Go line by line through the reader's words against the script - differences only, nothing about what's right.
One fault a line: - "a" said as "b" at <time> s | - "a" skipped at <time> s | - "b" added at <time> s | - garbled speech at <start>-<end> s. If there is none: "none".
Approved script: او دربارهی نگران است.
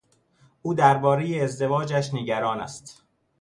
- "ازدواجش" added at 1.4 s